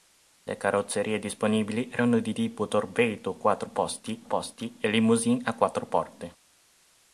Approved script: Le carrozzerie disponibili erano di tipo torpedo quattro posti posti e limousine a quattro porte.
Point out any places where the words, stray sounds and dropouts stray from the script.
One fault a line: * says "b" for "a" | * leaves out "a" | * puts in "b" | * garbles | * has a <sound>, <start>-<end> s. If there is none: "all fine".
all fine